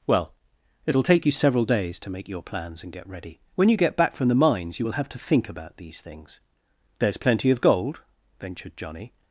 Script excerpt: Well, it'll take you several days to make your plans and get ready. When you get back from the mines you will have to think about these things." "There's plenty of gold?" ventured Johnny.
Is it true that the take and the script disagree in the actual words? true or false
false